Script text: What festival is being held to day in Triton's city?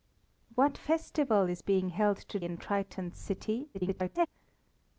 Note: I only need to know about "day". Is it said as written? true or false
false